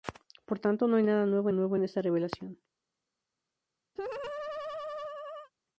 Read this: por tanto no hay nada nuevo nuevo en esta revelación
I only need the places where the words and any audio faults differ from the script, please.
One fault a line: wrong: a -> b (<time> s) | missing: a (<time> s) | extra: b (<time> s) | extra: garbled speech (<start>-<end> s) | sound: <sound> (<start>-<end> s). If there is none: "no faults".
sound: laugh (4.0-5.5 s)